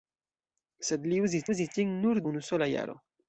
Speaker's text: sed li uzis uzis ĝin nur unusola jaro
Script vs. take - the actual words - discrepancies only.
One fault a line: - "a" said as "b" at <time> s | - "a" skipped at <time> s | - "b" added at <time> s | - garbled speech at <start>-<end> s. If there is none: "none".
none